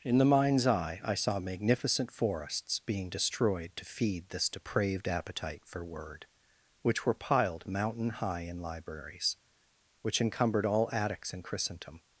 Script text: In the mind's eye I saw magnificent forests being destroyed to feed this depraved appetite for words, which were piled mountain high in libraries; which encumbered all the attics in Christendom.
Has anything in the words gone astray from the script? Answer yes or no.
yes